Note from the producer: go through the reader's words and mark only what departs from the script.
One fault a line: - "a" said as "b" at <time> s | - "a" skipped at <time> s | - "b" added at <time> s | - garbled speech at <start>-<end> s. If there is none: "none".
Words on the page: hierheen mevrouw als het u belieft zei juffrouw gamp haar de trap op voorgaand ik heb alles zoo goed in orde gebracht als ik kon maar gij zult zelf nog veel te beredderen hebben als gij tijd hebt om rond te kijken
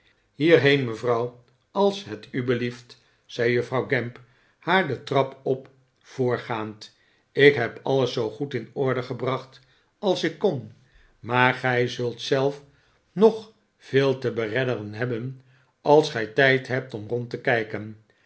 none